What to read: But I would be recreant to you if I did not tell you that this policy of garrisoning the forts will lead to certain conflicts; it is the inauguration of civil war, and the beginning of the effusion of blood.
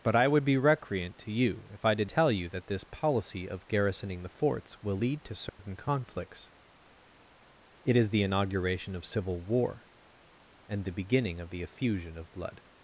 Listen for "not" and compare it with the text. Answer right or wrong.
wrong